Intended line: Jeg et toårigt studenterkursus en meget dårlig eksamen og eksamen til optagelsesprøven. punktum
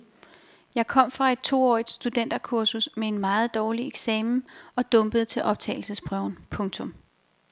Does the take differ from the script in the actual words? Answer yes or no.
yes